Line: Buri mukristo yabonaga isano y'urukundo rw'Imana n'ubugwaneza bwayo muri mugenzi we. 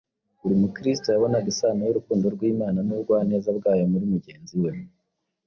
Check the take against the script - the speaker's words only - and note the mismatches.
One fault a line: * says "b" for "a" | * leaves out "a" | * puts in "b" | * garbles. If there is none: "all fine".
all fine